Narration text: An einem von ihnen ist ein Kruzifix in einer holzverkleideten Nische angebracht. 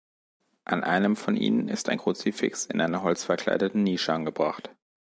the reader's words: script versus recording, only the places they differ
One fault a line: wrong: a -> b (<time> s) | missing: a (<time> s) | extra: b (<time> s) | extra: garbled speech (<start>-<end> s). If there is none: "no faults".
no faults